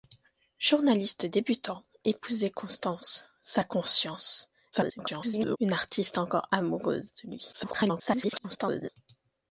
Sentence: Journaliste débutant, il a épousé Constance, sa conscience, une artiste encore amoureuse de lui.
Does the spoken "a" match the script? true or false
false